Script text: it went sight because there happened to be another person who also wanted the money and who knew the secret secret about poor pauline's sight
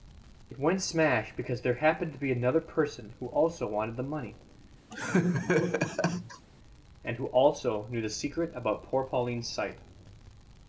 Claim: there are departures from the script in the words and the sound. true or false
true